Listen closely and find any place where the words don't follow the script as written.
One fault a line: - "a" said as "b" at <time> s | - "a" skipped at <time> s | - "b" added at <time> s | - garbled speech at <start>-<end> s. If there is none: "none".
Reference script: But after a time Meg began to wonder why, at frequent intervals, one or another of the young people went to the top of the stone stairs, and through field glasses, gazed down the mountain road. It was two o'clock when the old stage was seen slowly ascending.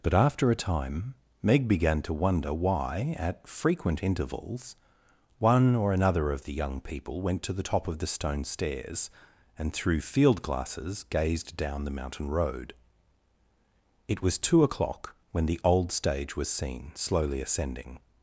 none